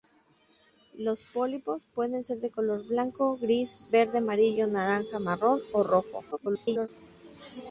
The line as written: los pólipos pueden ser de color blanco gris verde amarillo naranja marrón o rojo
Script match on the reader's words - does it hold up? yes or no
no